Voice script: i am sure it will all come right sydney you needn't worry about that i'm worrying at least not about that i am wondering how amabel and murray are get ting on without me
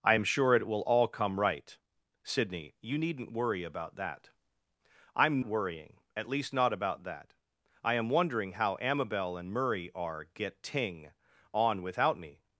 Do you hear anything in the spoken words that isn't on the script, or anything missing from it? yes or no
no